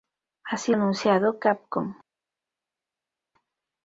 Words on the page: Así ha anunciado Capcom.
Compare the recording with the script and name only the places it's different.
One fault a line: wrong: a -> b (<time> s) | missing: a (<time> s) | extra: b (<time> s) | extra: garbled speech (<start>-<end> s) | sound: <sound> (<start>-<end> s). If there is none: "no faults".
no faults